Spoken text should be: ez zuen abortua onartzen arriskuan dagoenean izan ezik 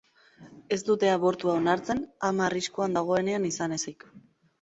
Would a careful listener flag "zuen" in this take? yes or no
yes